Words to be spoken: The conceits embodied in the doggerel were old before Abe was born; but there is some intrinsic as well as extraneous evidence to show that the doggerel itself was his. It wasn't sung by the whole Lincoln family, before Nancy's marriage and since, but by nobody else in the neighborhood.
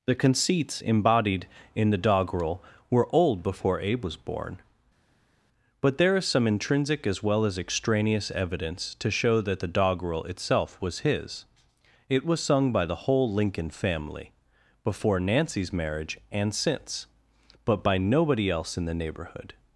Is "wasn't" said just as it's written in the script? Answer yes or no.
no